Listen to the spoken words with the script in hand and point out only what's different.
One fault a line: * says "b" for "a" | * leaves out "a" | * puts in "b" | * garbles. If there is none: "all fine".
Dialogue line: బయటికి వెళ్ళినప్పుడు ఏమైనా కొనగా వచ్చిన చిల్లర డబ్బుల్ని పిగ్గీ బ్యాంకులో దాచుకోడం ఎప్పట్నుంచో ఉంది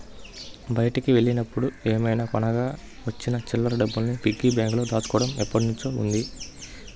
all fine